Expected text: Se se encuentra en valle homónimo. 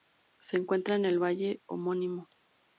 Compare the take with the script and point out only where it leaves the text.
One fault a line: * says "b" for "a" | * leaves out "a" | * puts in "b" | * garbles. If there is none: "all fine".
* leaves out "se"
* puts in "el"